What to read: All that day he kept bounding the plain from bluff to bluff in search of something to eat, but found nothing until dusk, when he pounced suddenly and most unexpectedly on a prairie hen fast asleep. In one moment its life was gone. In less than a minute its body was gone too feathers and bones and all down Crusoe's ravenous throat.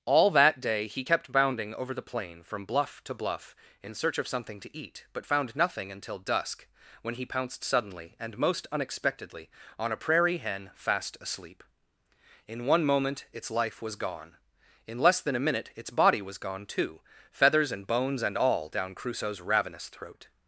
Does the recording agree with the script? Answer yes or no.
no